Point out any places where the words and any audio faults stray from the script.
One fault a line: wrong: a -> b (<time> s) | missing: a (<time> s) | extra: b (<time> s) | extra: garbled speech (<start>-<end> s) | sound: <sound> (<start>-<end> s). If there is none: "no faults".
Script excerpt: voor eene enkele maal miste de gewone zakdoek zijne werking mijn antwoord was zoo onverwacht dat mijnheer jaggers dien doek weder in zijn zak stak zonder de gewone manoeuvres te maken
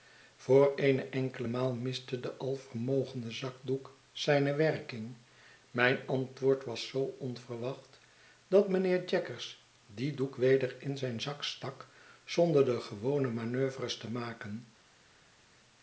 wrong: gewone -> alvermogende (2.4 s)